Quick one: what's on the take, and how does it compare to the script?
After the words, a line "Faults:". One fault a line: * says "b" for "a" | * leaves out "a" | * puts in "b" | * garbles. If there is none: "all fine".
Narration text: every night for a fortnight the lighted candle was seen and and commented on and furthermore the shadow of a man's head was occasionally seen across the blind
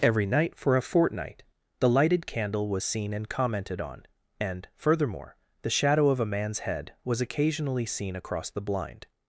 every night for a fortnight the lighted candle was seen and commented on and furthermore the shadow of a man's head was occasionally seen across the blind
Faults:
* leaves out "and"